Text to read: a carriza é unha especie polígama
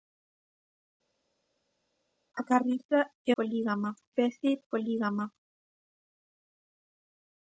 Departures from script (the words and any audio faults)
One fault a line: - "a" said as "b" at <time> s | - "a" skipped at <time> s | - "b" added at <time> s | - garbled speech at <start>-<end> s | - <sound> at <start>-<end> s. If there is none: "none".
- "unha" said as "polígama" at 3.4 s